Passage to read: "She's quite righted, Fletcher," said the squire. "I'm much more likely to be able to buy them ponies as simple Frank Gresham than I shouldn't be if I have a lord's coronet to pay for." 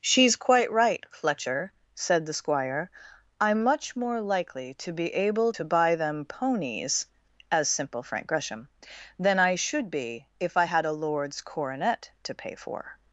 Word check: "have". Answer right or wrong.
wrong